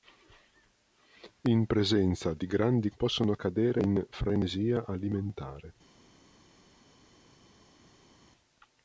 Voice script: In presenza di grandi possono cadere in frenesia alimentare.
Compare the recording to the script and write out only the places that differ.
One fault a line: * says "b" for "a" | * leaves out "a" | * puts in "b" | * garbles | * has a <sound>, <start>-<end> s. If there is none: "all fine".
all fine